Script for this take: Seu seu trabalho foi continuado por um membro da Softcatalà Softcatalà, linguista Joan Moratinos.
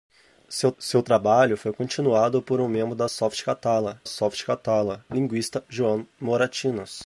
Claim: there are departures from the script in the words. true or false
false